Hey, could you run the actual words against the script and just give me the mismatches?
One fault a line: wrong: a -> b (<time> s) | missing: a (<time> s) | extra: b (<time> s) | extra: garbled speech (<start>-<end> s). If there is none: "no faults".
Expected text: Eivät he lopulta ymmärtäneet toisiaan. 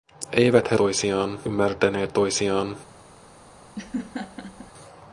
wrong: lopulta -> toisiaan (0.8 s)